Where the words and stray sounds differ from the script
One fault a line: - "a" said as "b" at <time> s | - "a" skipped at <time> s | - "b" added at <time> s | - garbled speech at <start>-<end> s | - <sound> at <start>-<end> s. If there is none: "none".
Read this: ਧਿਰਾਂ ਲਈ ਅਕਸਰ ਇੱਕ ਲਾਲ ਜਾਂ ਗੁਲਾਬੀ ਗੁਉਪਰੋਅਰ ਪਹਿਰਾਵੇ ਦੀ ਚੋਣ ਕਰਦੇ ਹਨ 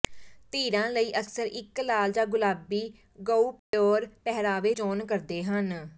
- dropout at 3.6-3.7 s
- "ਦੀ" skipped at 4.7 s